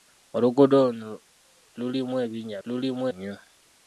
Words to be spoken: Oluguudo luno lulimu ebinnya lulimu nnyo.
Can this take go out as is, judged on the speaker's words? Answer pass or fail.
pass